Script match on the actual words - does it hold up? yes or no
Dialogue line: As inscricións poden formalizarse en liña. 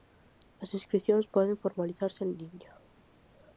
yes